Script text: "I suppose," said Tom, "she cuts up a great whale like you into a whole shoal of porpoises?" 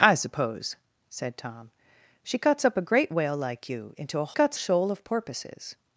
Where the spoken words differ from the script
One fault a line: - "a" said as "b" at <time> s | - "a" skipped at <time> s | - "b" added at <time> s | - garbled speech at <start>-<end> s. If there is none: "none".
- "whole" said as "cuts" at 4.3 s